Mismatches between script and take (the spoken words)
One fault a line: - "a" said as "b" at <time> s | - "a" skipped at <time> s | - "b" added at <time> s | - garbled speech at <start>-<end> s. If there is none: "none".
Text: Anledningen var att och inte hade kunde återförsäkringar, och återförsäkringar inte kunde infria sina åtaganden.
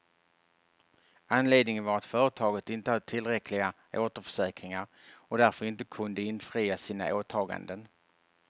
- "och" said as "företaget" at 2.0 s
- "kunde" said as "tillräckliga" at 3.0 s
- "återförsäkringar" said as "därför" at 5.4 s